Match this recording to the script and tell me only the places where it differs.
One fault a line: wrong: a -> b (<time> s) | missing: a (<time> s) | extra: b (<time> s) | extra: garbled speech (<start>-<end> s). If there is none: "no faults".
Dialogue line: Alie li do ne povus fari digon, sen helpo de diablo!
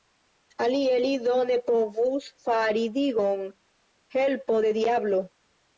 missing: sen (3.5 s)